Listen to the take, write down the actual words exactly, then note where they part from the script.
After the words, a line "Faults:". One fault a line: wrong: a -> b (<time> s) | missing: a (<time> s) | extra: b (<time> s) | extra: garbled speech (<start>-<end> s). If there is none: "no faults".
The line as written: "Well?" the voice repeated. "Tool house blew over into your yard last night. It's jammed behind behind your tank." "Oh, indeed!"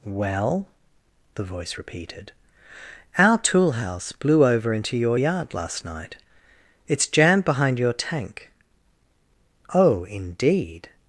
"Well?" the voice repeated. "Our tool house blew over into your yard last night. It's jammed behind your tank." "Oh, indeed!"
Faults:
extra: Our (3.2 s)
missing: behind (7.8 s)